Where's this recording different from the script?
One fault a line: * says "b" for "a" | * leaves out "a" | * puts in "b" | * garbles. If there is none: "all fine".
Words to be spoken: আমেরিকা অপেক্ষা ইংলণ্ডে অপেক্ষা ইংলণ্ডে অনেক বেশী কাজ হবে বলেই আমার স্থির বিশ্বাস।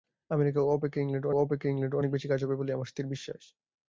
all fine